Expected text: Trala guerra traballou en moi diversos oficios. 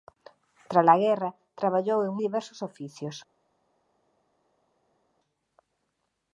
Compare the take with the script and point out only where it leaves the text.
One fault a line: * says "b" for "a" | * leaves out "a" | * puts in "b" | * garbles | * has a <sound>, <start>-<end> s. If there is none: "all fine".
* leaves out "moi"